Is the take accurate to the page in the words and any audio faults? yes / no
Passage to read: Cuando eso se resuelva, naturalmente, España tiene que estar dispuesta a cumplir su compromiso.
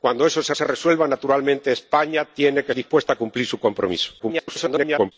no